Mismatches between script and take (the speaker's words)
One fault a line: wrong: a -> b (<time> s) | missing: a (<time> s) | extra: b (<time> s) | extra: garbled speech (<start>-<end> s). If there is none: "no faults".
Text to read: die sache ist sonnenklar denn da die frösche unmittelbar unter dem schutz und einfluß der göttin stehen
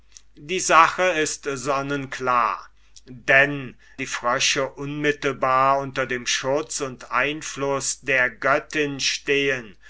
missing: da (3.8 s)